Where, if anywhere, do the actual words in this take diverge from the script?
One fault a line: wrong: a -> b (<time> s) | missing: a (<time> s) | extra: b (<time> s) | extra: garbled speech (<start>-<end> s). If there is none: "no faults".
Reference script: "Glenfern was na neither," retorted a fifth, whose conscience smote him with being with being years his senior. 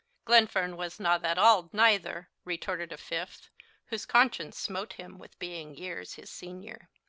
extra: that auld (1.2 s)
missing: with being (5.7 s)